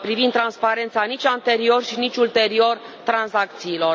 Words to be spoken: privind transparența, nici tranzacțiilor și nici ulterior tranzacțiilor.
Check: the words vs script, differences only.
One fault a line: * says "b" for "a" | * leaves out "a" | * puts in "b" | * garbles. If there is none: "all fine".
* says "anterior" for "tranzacțiilor"